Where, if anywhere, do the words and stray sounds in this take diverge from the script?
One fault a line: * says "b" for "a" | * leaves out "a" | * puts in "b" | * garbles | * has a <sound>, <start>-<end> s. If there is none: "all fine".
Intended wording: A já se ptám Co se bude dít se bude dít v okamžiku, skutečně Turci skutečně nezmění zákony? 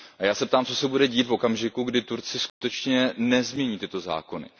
* leaves out "se bude dít"
* says "kdy" for "skutečně"
* has a dropout, 2.5-2.6 s
* puts in "tyto"